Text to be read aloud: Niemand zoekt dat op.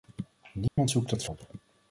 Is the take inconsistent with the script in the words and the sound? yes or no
yes